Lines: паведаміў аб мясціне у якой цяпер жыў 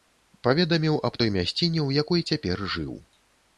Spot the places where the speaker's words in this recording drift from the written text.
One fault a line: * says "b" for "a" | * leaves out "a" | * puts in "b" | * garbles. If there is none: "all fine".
* puts in "той"